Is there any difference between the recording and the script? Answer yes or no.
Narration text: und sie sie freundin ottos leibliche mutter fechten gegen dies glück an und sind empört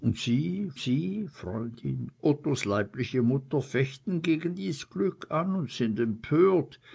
no